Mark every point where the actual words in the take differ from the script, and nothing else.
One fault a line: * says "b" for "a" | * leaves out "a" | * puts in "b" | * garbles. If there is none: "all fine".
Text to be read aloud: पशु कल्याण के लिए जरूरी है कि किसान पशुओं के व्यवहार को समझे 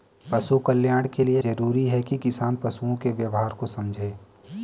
all fine